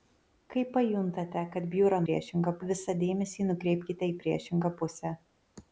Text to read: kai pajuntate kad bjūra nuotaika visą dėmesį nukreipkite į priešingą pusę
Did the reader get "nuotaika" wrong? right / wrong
wrong